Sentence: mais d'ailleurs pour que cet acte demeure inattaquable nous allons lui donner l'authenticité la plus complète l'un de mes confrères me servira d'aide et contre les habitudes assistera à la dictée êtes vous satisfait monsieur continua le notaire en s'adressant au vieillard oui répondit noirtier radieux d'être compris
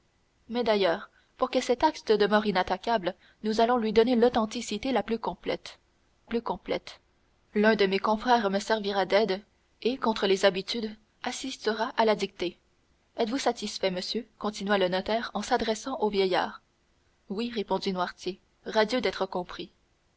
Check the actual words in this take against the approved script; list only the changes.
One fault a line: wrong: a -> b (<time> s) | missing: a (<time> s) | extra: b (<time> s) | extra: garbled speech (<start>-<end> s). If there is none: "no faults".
extra: plus complète (6.3 s)